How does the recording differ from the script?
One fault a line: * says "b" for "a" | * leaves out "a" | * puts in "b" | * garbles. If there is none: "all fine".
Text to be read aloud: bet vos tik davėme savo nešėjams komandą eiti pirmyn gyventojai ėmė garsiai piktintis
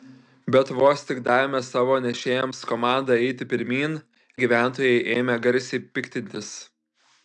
all fine